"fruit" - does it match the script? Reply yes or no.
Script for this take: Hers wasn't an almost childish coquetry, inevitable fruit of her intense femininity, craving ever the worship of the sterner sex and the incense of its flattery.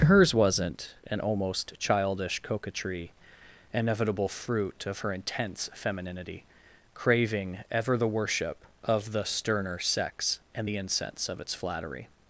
yes